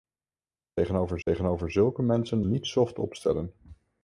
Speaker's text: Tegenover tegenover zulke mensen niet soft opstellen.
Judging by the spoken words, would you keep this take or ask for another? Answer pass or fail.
pass